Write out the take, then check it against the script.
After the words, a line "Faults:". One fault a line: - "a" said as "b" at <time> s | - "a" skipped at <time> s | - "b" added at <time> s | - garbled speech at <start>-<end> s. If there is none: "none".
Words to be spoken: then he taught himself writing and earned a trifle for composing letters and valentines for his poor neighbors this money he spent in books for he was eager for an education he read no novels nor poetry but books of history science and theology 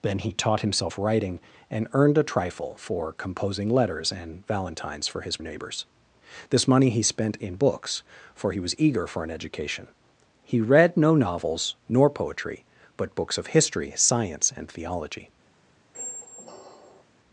then he taught himself writing and earned a trifle for composing letters and valentines for his neighbors this money he spent in books for he was eager for an education he read no novels nor poetry but books of history science and theology
Faults:
- "poor" skipped at 5.4 s